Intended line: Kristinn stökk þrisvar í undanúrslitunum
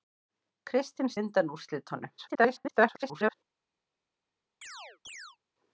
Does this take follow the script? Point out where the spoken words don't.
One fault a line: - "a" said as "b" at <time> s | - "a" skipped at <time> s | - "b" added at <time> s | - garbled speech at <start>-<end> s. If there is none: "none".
- "stökk þrisvar" skipped at 1.1 s
- garbled speech at 2.2-3.3 s